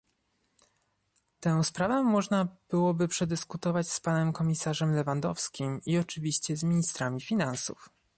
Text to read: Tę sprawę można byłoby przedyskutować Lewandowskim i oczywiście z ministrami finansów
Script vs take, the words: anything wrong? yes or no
yes